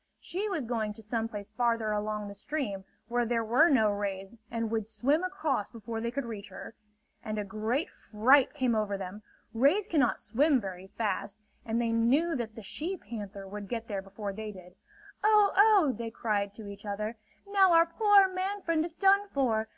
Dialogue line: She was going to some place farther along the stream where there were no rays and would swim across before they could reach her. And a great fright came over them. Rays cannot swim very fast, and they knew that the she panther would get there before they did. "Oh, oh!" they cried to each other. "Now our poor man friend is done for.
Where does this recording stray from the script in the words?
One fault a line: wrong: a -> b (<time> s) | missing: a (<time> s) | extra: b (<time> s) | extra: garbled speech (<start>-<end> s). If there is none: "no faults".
no faults